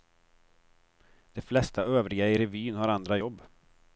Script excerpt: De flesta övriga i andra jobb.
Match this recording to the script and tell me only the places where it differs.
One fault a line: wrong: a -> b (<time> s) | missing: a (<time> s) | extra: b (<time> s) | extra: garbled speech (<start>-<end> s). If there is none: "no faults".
extra: revyn har (2.4 s)